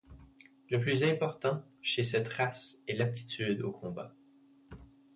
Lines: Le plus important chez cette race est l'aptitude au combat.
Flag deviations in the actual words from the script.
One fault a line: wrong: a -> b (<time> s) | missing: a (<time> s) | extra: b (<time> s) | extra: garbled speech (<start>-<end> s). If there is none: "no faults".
no faults